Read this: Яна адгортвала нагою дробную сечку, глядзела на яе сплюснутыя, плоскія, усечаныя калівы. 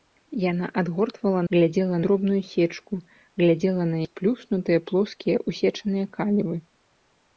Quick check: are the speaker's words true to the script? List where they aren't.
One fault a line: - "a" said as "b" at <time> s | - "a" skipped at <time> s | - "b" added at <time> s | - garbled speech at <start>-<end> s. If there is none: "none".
- "нагою" said as "глядзела" at 1.5 s
- "яе" skipped at 4.0 s